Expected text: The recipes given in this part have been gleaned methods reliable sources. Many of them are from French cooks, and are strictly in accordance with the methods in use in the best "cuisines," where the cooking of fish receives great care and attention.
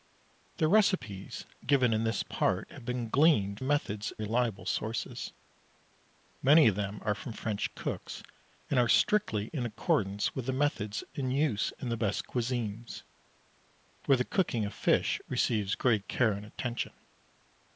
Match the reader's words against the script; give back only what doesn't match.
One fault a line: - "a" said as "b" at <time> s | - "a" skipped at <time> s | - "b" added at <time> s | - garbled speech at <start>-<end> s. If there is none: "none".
none